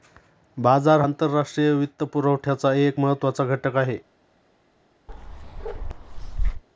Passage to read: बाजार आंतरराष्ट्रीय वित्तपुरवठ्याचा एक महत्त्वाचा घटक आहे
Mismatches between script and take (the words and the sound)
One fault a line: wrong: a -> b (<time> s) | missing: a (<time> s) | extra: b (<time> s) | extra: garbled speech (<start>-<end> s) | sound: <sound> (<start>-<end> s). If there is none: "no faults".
sound: bark (5.1-6.6 s)